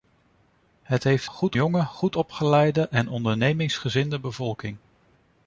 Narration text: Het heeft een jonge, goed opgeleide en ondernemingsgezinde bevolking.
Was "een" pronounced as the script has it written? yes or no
no